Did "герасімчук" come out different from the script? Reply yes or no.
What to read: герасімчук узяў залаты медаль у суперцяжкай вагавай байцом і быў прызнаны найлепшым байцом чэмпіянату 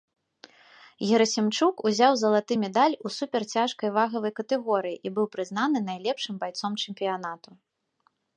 no